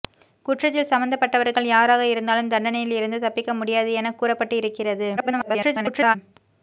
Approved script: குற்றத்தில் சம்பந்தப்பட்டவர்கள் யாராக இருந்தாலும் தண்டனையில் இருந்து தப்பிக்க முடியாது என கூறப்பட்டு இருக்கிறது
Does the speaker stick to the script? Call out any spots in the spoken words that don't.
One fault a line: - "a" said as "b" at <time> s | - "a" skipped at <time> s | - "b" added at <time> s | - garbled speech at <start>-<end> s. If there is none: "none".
- garbled speech at 5.2-6.2 s